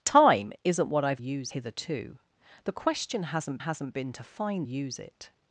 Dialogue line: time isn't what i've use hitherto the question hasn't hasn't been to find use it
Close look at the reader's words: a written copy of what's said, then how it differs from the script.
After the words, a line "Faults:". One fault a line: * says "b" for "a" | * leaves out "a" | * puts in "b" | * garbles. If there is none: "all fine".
time isn't what i've use hitherto the question hasn't hasn't been to find use it
Faults:
all fine